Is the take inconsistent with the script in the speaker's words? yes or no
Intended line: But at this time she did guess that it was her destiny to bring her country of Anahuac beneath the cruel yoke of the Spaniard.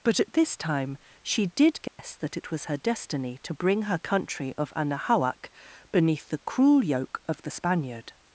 no